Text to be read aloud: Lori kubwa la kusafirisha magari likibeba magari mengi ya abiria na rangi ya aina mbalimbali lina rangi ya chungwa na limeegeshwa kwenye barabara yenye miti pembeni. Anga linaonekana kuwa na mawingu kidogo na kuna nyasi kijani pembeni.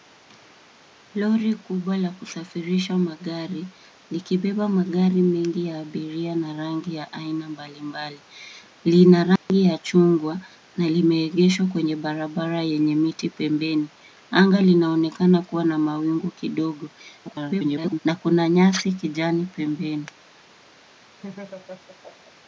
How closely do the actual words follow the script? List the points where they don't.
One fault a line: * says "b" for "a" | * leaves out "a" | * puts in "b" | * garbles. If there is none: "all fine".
* garbles